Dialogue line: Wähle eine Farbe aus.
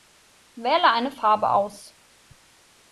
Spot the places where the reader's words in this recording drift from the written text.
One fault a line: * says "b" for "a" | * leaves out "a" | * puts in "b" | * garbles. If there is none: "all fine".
all fine